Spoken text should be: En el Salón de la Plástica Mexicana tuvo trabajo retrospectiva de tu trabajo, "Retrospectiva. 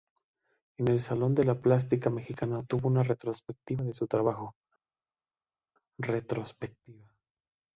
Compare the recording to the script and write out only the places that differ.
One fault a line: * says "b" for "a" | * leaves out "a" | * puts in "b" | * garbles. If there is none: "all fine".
* says "una" for "trabajo"
* says "su" for "tu"